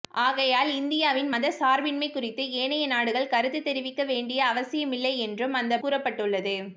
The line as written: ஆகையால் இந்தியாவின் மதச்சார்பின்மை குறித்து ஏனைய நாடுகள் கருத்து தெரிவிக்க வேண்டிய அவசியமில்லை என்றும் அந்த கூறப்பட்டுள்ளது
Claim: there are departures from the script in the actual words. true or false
false